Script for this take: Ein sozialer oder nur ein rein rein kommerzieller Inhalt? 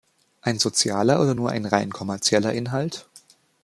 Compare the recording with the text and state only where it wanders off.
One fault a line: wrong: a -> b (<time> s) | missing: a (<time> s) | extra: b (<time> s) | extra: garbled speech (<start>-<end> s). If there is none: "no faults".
missing: rein (1.9 s)